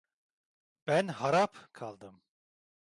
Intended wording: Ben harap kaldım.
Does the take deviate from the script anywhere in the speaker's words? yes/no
no